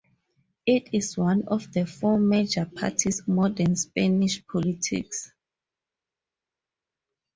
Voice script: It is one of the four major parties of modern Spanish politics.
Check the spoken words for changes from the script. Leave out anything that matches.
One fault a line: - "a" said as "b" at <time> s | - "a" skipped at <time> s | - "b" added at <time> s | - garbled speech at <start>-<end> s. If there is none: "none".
- "of" skipped at 3.2 s